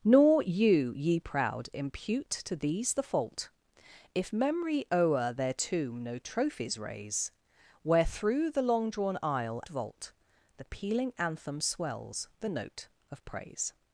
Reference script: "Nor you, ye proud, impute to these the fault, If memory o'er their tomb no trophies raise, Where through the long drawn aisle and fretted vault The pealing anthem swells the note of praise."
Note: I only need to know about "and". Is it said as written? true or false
false